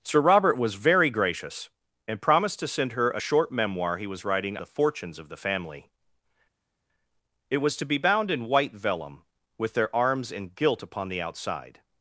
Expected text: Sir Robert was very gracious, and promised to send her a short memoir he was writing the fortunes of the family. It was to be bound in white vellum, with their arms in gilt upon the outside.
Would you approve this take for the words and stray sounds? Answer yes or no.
yes